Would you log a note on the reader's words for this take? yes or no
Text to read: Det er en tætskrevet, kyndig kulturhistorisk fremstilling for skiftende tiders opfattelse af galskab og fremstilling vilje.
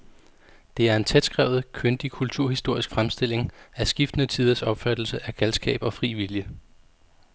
yes